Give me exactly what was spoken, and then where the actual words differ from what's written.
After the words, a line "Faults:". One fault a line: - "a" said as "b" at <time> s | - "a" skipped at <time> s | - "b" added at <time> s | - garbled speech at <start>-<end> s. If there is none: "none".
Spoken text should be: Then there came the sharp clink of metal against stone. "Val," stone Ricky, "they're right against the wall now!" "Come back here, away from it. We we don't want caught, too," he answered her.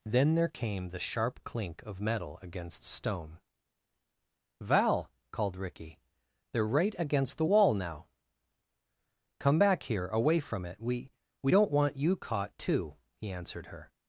Then there came the sharp clink of metal against stone. "Val," called Ricky, "they're right against the wall now!" "Come back here, away from it. We we don't want you caught, too," he answered her.
Faults:
- "stone" said as "called" at 5.3 s
- "you" added at 12.0 s